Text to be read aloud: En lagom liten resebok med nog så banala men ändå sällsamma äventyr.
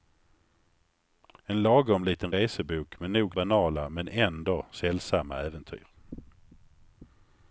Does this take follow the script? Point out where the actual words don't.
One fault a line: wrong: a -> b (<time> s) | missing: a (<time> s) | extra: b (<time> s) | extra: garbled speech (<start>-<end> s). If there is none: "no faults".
missing: så (3.4 s)